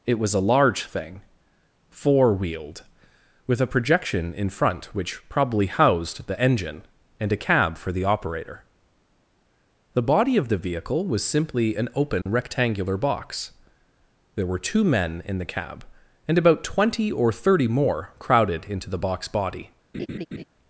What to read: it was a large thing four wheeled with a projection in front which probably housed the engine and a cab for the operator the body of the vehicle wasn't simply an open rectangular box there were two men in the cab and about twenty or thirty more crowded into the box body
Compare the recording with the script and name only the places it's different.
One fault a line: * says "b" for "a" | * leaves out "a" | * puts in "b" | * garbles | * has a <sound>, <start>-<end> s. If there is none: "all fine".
* says "was" for "wasn't"
* has a dropout, 12.2-12.3 s
* has a laugh, 19.9-20.4 s